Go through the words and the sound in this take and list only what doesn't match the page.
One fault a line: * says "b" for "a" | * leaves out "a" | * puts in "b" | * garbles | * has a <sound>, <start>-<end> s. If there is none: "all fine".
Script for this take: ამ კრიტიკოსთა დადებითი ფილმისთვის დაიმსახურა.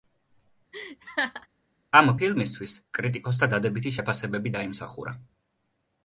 * has a laugh, 0.7-1.5 s
* puts in "ფილმისთვის"
* says "შეფასებები" for "ფილმისთვის"